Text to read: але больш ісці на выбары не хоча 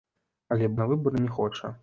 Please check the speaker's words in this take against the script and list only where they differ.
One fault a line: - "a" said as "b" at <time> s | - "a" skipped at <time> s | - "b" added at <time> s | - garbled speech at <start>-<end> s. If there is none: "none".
- "больш ісці" skipped at 0.7 s